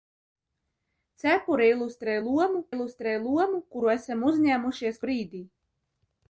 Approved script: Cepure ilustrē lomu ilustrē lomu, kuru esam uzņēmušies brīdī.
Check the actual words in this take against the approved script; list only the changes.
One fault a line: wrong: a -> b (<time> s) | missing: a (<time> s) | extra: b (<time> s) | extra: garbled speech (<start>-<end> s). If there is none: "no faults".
no faults